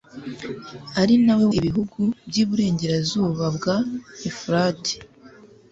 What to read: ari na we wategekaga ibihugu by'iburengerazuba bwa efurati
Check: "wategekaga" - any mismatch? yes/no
yes